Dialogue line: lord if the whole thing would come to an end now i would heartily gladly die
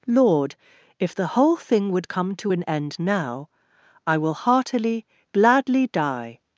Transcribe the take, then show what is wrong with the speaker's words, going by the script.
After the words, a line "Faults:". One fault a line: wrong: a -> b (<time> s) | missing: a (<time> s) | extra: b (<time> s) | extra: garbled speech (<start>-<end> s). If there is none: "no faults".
lord if the whole thing would come to an end now i will heartily gladly die
Faults:
wrong: would -> will (4.2 s)